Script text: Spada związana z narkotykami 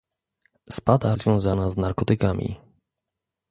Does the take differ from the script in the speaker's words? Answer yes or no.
no